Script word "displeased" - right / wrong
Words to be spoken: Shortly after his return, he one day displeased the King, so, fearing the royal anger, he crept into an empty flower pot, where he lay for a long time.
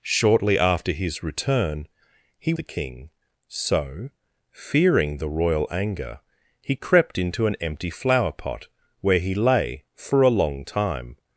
wrong